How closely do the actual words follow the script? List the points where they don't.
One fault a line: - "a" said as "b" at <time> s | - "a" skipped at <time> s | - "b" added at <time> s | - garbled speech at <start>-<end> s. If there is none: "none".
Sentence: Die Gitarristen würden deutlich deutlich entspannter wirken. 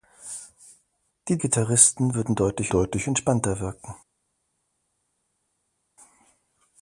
none